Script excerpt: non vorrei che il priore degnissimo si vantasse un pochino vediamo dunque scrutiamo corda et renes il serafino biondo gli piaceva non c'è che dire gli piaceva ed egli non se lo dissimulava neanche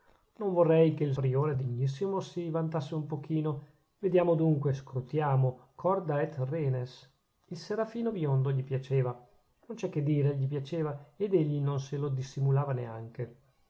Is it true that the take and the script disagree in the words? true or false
false